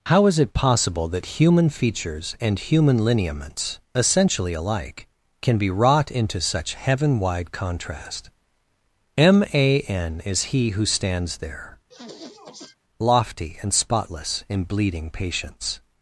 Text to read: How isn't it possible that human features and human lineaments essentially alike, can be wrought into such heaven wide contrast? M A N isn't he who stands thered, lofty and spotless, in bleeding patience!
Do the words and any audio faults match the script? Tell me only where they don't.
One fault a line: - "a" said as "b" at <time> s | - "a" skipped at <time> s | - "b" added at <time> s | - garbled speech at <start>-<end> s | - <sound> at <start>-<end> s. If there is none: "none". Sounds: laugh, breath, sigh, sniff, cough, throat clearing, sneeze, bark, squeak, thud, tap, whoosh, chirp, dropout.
- "isn't" said as "is" at 0.2 s
- "isn't" said as "is" at 10.2 s
- "thered" said as "there" at 11.4 s
- sniff at 11.9-12.8 s